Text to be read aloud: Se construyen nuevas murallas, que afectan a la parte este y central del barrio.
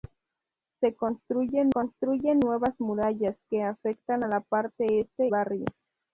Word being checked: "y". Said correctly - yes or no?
no